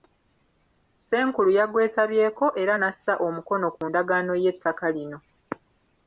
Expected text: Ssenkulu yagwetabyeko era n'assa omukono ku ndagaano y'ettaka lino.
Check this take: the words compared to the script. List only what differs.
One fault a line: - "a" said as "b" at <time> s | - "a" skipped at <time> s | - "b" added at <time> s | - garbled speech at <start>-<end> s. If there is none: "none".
none